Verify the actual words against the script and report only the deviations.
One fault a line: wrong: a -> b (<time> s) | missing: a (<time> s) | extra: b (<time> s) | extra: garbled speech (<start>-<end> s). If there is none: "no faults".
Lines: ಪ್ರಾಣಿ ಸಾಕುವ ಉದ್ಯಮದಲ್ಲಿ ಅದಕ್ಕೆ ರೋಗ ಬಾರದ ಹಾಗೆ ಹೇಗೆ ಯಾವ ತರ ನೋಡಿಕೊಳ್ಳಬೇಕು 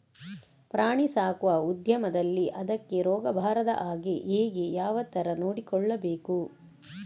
no faults